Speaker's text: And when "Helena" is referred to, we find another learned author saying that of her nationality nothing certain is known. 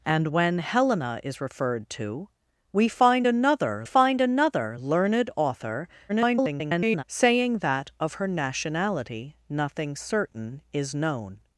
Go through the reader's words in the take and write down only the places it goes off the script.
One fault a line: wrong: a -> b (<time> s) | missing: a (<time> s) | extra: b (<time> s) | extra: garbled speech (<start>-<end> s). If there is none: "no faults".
extra: find another (3.8 s)
extra: garbled speech (6.1-7.0 s)